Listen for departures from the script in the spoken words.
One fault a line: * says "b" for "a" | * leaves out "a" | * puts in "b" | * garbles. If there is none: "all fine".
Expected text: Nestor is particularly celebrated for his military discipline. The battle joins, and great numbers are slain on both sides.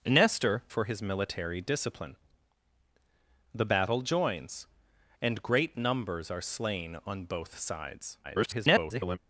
* leaves out "is particularly celebrated"
* garbles